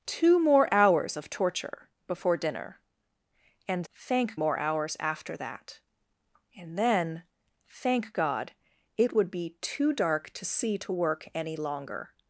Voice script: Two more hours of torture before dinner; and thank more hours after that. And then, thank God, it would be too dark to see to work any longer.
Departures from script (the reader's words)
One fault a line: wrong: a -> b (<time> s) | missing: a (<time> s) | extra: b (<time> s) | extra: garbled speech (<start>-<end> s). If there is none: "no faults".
no faults